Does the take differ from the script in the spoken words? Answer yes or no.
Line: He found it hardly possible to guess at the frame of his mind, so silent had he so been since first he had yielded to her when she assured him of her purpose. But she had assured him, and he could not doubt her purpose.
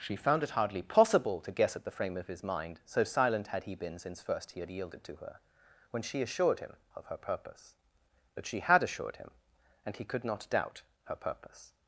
yes